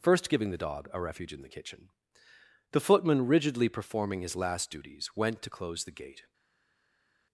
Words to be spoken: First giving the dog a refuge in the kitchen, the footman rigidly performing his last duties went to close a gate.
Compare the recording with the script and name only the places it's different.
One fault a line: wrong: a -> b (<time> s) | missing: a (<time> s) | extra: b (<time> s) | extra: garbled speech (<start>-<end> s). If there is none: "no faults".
wrong: a -> the (5.9 s)